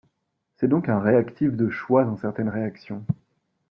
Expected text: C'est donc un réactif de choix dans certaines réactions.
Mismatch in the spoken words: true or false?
false